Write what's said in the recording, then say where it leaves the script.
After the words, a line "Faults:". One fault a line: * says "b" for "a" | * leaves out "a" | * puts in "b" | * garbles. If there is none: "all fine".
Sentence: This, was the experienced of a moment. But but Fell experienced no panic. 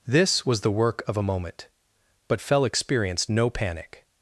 This, was the work of a moment. But Fell experienced no panic.
Faults:
* says "work" for "experienced"
* leaves out "but"